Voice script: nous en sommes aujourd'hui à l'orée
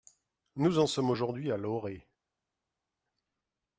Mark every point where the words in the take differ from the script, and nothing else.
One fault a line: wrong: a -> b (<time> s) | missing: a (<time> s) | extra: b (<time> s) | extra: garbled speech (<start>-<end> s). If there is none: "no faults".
no faults